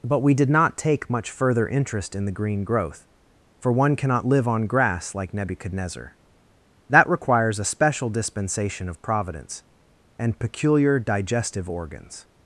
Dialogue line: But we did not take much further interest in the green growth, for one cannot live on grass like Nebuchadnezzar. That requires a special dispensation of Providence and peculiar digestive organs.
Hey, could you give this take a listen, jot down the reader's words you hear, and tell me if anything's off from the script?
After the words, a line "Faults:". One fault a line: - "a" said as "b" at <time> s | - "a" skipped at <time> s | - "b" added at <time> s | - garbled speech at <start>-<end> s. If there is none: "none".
But we did not take much further interest in the green growth, for one cannot live on grass like Nebuchadnezzar. That requires a special dispensation of Providence and peculiar digestive organs.
Faults:
none